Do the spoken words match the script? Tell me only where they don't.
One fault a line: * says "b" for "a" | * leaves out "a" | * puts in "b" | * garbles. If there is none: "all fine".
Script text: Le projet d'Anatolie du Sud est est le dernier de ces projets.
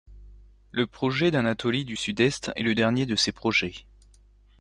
all fine